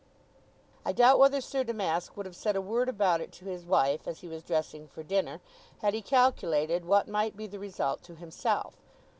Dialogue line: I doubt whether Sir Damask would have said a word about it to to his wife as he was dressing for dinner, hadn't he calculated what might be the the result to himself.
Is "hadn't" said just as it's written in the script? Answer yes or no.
no